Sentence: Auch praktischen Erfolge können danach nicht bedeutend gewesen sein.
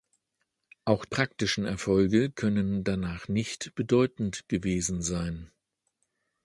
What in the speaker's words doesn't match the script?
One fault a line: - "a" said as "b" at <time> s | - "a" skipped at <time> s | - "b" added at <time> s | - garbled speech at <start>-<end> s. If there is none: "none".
none